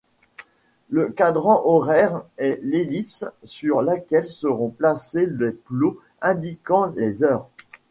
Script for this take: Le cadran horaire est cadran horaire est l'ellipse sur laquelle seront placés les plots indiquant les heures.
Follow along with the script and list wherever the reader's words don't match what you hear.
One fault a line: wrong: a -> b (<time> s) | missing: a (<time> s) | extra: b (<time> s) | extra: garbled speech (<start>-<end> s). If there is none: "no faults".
missing: cadran horaire est (2.6 s)